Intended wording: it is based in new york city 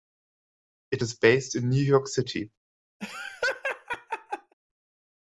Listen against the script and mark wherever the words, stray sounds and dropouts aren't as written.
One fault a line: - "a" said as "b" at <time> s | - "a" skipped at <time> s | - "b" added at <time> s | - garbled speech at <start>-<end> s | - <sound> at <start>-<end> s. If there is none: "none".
- laugh at 3.0-4.5 s